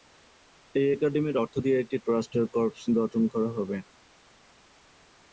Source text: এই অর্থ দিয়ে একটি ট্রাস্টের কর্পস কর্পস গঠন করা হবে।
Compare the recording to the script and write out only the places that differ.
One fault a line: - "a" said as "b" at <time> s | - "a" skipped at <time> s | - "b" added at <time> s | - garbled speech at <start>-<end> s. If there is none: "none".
- "একাডেমির" added at 0.9 s
- "কর্পস" skipped at 2.8 s